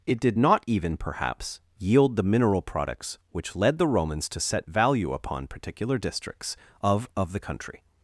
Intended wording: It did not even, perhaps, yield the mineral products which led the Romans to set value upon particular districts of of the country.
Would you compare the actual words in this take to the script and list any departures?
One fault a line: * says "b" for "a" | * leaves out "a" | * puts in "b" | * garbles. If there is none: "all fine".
all fine